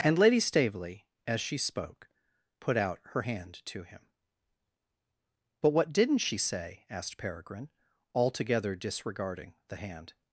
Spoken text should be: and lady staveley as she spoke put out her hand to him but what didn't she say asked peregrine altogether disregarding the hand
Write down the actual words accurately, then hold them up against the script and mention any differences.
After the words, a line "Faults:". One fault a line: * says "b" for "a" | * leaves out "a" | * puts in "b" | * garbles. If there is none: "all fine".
and lady staveley as she spoke put out her hand to him but what didn't she say asked peregrine altogether disregarding the hand
Faults:
all fine